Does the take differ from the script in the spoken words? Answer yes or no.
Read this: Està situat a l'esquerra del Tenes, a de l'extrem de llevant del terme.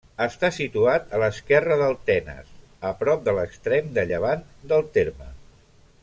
yes